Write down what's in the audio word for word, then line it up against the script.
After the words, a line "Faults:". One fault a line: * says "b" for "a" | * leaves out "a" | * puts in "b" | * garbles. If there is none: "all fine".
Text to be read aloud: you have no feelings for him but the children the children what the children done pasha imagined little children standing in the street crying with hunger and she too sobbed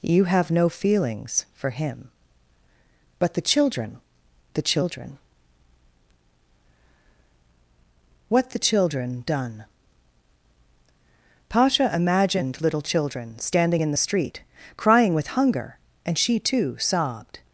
you have no feelings for him but the children the children what the children done pasha imagined little children standing in the street crying with hunger and she too sobbed
Faults:
all fine